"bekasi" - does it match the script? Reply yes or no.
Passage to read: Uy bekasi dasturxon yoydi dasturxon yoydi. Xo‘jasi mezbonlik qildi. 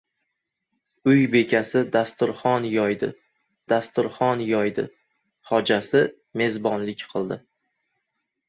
yes